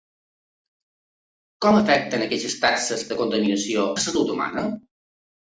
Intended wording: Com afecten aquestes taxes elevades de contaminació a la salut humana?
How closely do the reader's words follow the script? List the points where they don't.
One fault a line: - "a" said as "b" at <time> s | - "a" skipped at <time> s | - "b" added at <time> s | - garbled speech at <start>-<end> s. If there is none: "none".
- "elevades" skipped at 3.0 s
- "a" skipped at 3.9 s